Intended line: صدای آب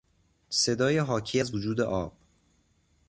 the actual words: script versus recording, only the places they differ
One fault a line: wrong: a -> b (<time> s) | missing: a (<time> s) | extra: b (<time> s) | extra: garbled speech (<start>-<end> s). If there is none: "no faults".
extra: حاکی از وجود (1.0 s)